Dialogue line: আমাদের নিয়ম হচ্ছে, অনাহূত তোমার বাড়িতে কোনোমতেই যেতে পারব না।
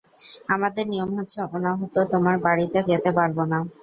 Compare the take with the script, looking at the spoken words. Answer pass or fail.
fail